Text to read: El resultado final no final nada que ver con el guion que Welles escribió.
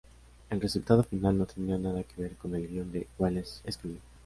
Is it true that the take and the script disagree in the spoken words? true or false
true